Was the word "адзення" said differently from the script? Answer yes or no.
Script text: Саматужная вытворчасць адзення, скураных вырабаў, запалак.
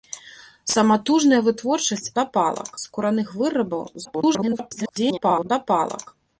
yes